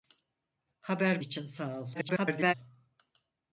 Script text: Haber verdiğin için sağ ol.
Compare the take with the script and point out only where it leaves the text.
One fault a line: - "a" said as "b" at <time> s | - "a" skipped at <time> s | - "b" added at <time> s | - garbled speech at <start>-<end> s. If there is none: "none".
- "verdiğin" skipped at 1.2 s
- garbled speech at 1.9-2.5 s